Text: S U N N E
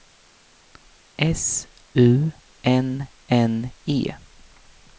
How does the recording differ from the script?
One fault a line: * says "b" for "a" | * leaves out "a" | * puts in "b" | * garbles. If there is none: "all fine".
all fine